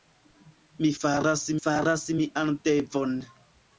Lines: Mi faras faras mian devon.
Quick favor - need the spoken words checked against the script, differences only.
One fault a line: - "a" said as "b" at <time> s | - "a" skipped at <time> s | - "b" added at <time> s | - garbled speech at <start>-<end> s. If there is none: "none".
none